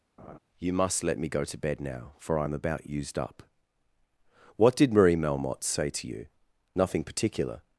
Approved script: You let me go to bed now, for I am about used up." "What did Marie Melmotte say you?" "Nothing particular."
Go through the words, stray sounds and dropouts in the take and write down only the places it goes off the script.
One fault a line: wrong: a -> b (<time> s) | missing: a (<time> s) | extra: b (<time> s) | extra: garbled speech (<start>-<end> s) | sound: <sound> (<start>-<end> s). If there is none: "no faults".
sound: laugh (0.2-0.4 s)
extra: must (0.7 s)
extra: to (5.9 s)